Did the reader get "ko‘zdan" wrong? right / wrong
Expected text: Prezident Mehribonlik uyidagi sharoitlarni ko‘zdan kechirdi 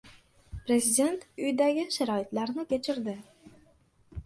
wrong